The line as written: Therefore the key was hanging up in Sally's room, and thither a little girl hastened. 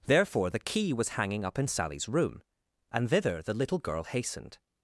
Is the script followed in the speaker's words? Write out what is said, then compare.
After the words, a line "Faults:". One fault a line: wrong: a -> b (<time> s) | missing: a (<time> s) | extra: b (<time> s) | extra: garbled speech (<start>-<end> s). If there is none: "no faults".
Therefore the key was hanging up in Sally's room, and thither the little girl hastened.
Faults:
wrong: a -> the (3.4 s)